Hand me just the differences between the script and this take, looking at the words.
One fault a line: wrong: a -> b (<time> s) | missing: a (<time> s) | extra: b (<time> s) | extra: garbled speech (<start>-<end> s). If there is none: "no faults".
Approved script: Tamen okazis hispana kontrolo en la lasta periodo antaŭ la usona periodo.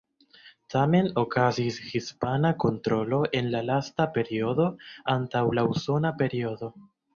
no faults